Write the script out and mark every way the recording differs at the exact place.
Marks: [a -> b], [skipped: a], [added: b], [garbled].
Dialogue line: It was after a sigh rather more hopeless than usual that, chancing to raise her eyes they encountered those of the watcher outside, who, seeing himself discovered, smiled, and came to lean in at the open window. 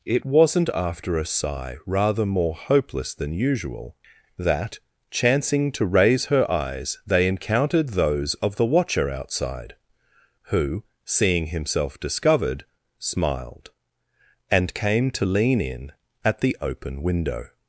It [was -> wasn't] after a sigh rather more hopeless than usual that, chancing to raise her eyes they encountered those of the watcher outside, who, seeing himself discovered, smiled, and came to lean in at the open window.